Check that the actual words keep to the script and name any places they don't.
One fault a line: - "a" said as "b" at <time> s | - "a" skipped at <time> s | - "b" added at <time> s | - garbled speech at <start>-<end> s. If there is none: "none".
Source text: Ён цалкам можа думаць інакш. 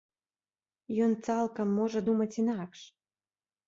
none